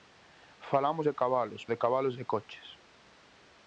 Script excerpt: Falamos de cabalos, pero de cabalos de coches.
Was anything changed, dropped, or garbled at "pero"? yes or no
yes